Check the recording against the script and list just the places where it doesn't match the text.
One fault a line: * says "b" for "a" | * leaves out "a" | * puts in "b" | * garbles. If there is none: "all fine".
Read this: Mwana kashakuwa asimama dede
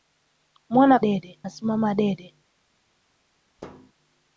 * says "dede" for "kashakuwa"